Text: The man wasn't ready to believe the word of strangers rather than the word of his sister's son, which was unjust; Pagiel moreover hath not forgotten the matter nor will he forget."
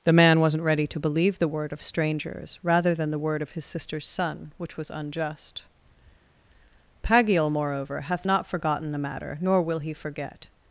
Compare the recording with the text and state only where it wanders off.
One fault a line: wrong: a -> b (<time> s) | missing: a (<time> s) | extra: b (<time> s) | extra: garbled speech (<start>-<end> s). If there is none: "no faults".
no faults